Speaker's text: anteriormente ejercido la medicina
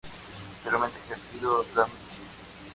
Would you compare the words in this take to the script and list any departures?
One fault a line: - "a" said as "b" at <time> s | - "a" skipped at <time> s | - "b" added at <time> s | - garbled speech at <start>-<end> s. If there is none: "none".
none